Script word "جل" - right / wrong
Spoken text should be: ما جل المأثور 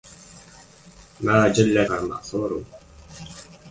right